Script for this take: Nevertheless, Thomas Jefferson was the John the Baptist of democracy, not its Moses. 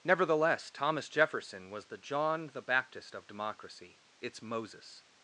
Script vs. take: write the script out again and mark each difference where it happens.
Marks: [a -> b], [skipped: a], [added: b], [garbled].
Nevertheless, Thomas Jefferson was the John the Baptist of democracy, [skipped: not] its Moses.